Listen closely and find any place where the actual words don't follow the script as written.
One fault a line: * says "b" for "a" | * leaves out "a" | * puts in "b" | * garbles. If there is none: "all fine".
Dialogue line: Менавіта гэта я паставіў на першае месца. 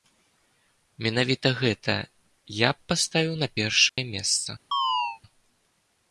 * puts in "б"